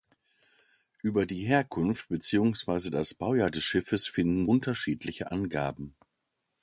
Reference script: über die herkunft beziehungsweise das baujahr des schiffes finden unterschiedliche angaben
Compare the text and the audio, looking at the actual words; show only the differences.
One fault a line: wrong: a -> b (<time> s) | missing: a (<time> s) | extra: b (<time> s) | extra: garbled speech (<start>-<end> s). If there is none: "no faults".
no faults